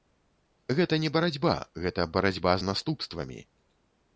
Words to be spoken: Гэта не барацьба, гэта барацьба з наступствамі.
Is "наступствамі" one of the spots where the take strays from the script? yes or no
no